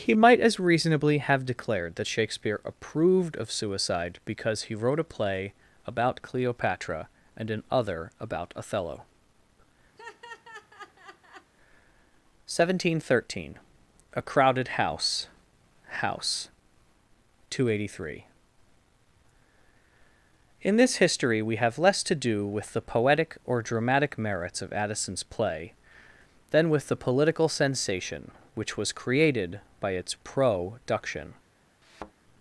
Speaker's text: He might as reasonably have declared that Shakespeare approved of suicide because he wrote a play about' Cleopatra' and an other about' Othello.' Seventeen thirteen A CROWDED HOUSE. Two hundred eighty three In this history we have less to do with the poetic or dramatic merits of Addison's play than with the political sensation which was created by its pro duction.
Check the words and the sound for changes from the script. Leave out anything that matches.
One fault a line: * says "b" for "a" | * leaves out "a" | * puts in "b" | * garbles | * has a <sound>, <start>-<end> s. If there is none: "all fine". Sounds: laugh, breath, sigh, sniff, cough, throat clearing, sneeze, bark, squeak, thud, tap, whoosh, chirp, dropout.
* has a laugh, 10.0-11.5 s
* puts in "HOUSE"
* has a thud, 31.8-32.1 s